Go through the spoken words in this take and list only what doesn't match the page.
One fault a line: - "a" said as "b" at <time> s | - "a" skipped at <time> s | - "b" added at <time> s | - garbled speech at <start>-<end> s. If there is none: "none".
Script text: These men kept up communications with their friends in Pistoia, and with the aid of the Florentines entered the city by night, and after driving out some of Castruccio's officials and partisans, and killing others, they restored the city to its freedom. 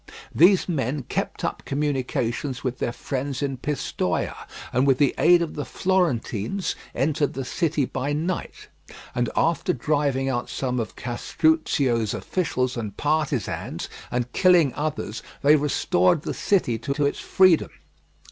- "to" added at 16.9 s